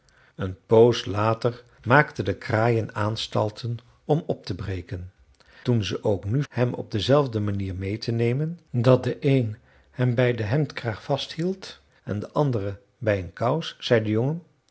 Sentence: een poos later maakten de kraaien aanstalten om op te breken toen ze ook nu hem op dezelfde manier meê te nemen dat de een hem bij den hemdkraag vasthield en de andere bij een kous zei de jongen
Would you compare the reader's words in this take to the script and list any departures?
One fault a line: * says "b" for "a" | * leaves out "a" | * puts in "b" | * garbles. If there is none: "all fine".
all fine